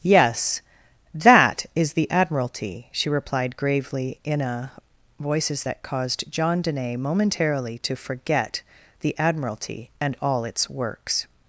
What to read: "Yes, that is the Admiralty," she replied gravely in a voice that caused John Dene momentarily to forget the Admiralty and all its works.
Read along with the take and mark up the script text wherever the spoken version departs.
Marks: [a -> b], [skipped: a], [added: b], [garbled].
"Yes, that is the Admiralty," she replied gravely in a [voice -> voices] that caused John Dene momentarily to forget the Admiralty and all its works.